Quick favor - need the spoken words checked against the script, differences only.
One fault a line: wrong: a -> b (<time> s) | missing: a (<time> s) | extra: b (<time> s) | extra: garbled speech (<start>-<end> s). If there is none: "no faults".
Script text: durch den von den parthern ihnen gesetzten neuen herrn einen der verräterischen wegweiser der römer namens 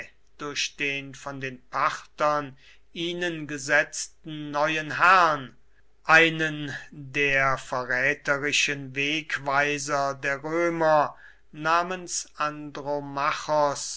no faults